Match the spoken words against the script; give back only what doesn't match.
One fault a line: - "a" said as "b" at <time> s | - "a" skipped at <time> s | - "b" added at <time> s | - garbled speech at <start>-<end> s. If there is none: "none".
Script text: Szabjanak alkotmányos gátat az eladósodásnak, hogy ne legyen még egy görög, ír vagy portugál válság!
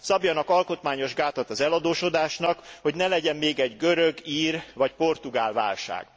none